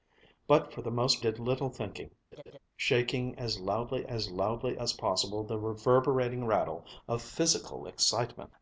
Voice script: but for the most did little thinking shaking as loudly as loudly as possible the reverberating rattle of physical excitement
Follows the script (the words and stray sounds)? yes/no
no